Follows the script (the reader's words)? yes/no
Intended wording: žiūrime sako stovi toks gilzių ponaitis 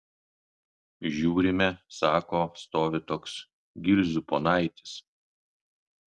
yes